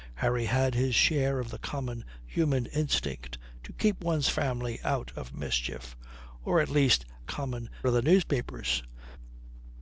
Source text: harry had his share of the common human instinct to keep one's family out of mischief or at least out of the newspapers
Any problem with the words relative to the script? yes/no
yes